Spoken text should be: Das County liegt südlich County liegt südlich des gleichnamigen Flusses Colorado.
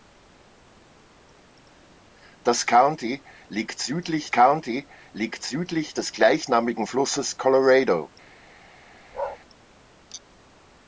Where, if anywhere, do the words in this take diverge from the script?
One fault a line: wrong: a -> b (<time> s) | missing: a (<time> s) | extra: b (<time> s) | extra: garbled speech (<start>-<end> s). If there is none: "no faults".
no faults